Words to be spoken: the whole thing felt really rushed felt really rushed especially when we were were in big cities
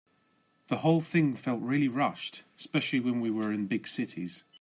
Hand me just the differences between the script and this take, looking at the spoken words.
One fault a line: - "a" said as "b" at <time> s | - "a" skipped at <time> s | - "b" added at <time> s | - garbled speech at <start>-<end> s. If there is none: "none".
- "felt really rushed" skipped at 2.4 s
- "were" skipped at 3.5 s